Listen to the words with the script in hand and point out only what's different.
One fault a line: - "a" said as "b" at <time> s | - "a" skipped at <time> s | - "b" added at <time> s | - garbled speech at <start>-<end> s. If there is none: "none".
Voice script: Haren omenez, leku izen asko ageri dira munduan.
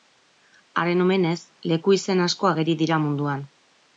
none